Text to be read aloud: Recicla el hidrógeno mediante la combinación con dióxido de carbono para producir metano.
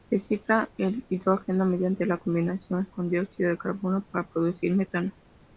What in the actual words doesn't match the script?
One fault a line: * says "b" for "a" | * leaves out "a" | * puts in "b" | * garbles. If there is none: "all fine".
all fine